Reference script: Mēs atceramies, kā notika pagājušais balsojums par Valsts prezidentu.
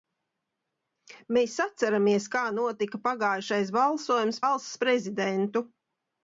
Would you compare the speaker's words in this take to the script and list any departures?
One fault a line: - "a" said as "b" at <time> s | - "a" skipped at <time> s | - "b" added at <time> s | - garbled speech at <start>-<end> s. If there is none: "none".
- "par" skipped at 4.4 s